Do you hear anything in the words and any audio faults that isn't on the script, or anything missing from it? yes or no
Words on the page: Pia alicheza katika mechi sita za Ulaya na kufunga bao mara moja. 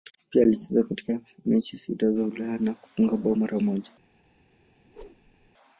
yes